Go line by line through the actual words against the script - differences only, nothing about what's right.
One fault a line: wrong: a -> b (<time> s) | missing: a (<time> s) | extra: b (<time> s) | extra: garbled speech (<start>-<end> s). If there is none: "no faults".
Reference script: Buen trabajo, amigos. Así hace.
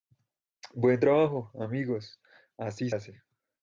no faults